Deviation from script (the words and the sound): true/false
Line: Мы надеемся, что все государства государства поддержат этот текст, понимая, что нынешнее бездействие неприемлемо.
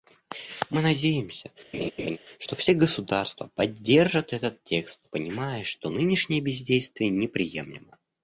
true